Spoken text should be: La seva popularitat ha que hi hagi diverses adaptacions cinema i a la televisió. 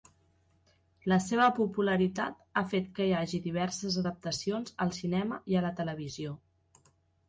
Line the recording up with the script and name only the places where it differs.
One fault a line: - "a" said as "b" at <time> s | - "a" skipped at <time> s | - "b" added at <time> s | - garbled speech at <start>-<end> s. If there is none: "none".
- "fet" added at 2.7 s
- "al" added at 4.9 s